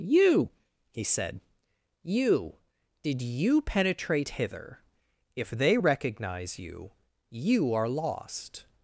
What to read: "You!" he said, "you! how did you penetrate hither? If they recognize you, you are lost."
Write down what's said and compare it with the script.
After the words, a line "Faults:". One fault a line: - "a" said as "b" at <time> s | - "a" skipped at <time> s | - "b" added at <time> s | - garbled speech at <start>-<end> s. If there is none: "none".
"You!" he said, "you! did you penetrate hither? If they recognize you, you are lost."
Faults:
- "how" skipped at 2.6 s